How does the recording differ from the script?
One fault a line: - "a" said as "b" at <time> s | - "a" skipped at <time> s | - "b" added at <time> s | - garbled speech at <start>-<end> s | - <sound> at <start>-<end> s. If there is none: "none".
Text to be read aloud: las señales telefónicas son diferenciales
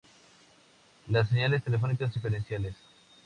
- "son" skipped at 2.1 s